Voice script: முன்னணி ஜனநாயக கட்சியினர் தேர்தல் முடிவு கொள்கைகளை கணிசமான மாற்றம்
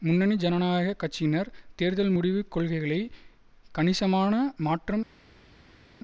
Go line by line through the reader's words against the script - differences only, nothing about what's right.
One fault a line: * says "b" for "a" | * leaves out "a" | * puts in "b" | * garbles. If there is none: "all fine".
all fine